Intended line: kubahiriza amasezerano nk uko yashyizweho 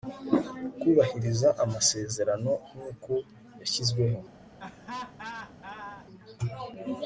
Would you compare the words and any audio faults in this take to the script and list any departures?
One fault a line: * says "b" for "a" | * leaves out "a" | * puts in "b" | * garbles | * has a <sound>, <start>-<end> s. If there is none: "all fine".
* has a laugh, 4.6-6.1 s